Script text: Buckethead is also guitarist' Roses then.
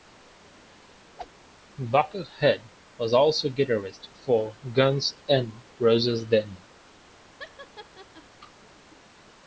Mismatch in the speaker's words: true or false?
true